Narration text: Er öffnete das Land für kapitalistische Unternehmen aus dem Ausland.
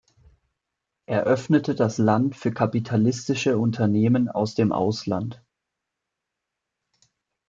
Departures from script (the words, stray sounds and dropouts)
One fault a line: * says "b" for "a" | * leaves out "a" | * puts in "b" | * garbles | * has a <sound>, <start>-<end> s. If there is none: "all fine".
all fine